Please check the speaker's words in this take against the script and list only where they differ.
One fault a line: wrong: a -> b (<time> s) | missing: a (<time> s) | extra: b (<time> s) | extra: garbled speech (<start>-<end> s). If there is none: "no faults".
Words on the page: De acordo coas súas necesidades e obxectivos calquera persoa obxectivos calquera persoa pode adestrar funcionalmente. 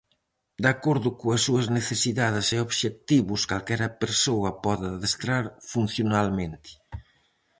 missing: obxectivos calquera persoa (4.5 s)